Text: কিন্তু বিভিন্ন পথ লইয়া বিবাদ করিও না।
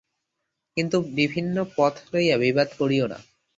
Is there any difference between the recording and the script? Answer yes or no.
no